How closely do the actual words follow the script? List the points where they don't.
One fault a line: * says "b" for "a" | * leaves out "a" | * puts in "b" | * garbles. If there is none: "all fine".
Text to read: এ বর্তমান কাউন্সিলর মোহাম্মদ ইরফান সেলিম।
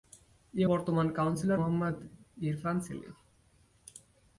all fine